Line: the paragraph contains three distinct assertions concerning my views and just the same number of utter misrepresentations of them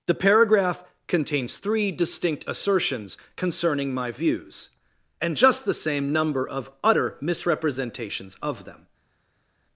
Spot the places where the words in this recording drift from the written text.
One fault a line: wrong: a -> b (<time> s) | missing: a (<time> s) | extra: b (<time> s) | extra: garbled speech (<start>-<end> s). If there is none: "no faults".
no faults